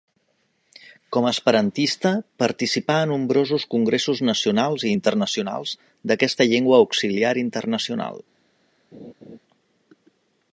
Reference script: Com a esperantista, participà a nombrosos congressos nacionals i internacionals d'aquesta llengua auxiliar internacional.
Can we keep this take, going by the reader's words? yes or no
yes